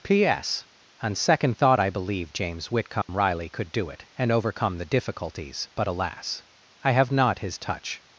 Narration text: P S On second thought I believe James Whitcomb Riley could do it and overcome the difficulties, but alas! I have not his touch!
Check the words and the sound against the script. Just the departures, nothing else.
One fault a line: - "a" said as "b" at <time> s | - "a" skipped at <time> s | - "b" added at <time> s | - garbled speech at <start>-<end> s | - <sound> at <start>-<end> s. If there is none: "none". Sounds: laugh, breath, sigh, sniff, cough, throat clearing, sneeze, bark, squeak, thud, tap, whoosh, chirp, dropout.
- dropout at 3.0-3.1 s